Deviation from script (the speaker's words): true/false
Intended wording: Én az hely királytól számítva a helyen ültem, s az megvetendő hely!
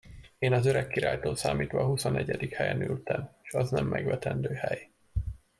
true